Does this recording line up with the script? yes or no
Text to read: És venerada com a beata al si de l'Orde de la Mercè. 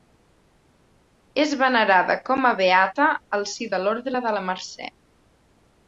yes